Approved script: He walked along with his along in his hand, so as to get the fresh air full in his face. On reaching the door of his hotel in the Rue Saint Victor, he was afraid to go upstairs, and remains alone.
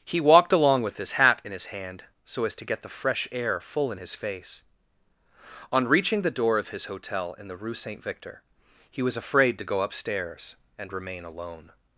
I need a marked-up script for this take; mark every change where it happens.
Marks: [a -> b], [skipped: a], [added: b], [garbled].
He walked along with his [along -> hat] in his hand, so as to get the fresh air full in his face. On reaching the door of his hotel in the Rue Saint Victor, he was afraid to go upstairs, and [remains -> remain] alone.